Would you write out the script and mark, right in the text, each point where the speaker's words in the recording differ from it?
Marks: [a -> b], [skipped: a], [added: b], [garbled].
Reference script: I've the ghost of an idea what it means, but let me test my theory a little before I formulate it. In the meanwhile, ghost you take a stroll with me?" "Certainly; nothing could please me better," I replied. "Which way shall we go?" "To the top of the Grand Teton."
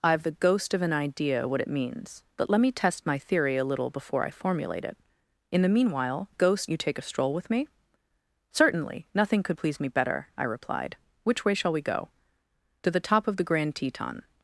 I've the ghost of an idea what it means, but let me test my theory a little before I formulate it. In the meanwhile, ghost you take a stroll with me?" "Certainly; nothing could please me better," I replied. "Which way shall we go?" "To the top of the Grand Teton."